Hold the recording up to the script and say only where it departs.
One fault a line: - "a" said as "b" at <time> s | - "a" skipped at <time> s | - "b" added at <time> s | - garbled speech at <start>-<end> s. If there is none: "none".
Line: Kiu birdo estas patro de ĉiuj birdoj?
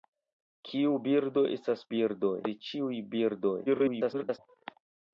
- "patro" said as "birdoj" at 1.9 s
- garbled speech at 3.7-4.4 s